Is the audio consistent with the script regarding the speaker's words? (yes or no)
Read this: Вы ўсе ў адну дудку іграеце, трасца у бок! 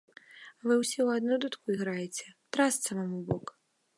no